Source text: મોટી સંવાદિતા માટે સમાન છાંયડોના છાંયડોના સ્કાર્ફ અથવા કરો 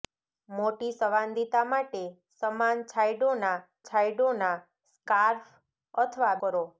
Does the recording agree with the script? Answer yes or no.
yes